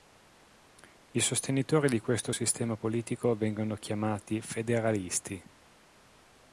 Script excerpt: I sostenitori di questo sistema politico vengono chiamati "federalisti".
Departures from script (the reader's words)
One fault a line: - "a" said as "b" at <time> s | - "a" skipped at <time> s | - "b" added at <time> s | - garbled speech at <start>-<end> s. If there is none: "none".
none